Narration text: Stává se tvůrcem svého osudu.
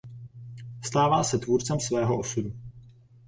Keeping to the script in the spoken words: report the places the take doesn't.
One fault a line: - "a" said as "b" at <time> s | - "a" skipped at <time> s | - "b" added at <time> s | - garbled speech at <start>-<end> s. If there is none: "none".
none